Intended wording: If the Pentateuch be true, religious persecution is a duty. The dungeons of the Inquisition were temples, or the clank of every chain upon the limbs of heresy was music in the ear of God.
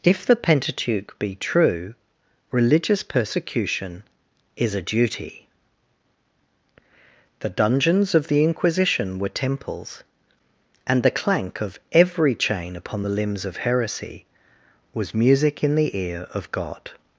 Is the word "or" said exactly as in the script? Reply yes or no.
no